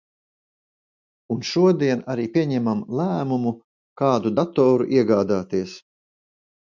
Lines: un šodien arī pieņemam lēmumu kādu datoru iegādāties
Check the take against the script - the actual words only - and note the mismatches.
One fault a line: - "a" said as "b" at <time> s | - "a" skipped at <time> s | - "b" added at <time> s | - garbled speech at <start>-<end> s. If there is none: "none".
none